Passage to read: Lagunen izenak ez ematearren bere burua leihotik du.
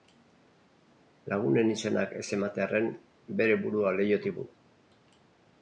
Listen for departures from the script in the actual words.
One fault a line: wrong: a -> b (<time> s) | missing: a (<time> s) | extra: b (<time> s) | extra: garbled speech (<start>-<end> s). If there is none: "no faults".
no faults